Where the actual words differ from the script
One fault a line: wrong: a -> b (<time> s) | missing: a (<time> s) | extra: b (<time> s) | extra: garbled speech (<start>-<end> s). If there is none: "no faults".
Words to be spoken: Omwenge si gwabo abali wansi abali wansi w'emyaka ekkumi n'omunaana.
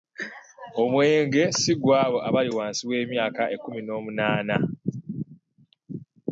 missing: abali wansi (2.8 s)